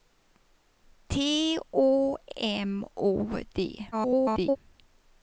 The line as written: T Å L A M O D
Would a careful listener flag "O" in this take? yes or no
no